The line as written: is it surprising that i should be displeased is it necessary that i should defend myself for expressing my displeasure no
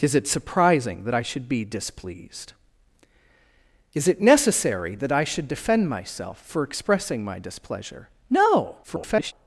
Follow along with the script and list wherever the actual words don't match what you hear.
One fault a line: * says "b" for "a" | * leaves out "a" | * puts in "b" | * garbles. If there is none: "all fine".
* garbles